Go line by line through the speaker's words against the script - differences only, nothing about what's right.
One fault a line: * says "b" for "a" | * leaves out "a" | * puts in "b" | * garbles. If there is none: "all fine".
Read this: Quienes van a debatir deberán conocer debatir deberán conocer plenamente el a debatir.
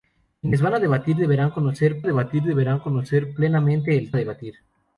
all fine